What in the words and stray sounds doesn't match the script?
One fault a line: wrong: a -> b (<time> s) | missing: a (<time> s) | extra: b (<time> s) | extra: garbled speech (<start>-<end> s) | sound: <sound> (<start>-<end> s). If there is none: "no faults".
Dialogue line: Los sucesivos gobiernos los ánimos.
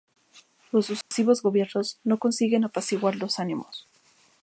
sound: dropout (1.0-1.1 s)
extra: no consiguen apaciguar (2.0 s)